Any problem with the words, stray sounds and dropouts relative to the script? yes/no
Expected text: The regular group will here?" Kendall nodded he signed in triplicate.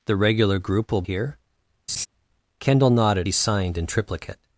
yes